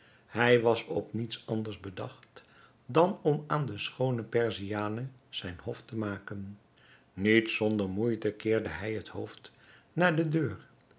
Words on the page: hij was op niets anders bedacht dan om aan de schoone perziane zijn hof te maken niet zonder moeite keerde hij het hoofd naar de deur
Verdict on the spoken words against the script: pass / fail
pass